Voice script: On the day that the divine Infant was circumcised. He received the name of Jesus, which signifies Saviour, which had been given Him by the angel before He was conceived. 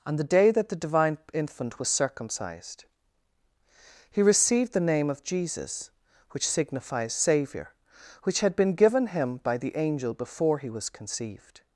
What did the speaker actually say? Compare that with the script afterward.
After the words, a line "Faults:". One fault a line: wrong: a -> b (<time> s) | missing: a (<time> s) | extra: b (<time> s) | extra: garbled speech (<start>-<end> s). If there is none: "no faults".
On the day that the divine Infant was circumcised. He received the name of Jesus, which signifies Saviour, which had been given Him by the angel before He was conceived.
Faults:
no faults